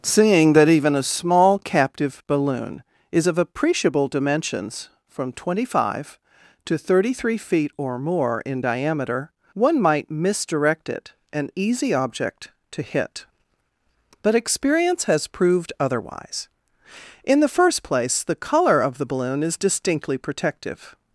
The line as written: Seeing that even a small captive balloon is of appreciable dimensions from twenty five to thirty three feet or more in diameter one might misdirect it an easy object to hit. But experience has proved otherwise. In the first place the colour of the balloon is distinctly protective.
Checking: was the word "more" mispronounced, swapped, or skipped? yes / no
no